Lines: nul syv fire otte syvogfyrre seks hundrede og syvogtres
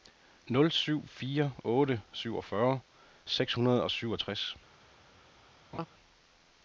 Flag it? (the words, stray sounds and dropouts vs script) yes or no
yes